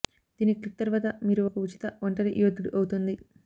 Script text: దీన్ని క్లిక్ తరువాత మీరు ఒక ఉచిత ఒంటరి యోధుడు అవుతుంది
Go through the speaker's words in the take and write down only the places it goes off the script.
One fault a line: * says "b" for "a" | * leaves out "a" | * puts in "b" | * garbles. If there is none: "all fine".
all fine